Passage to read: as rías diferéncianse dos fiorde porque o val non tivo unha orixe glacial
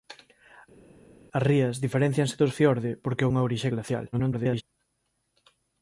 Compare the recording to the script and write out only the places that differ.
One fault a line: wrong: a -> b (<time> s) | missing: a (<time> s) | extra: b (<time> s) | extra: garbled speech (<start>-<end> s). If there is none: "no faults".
missing: val non tivo (3.3 s)
extra: garbled speech (4.1-4.6 s)